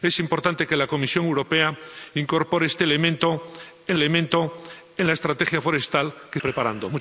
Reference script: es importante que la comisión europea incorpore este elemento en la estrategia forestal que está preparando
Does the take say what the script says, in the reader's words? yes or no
no